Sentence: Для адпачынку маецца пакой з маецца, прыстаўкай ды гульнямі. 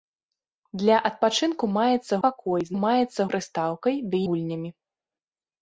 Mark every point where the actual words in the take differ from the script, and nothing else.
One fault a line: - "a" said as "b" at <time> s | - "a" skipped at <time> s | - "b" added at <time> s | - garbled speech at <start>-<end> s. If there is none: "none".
none